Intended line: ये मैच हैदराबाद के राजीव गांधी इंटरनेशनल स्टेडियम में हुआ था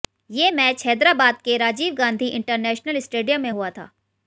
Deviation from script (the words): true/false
false